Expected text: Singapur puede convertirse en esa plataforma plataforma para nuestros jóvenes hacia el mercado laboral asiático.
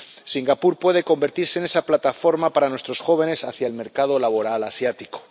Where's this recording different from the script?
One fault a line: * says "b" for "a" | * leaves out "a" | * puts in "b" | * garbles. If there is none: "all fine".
* leaves out "plataforma"